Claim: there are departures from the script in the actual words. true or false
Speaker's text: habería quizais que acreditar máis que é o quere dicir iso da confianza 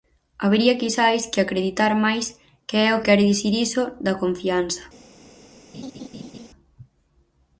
false